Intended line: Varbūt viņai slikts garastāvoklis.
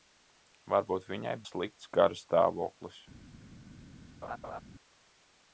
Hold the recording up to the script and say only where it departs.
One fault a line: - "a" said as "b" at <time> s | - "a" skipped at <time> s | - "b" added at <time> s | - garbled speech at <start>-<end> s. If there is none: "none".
none